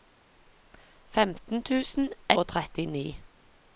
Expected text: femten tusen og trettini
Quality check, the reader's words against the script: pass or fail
pass